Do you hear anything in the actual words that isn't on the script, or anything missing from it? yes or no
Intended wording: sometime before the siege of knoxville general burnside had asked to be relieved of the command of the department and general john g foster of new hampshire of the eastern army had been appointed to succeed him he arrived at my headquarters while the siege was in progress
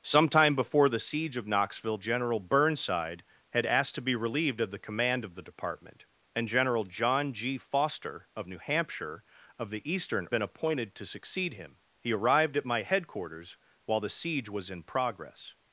yes